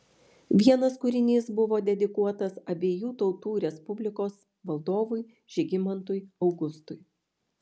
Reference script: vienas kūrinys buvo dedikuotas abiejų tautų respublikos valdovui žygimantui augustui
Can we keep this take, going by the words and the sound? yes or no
yes